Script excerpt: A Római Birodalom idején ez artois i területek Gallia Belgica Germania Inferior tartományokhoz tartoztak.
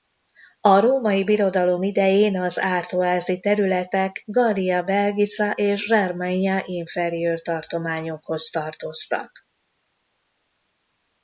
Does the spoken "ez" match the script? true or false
false